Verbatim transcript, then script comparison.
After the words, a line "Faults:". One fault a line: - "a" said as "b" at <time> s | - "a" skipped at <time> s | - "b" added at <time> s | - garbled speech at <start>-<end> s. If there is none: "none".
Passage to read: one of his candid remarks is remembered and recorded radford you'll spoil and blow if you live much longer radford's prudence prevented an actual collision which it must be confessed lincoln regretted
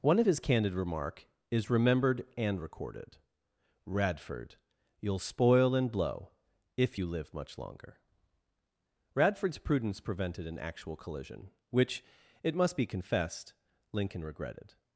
one of his candid remark is remembered and recorded radford you'll spoil and blow if you live much longer radford's prudence prevented an actual collision which it must be confessed lincoln regretted
Faults:
- "remarks" said as "remark" at 0.7 s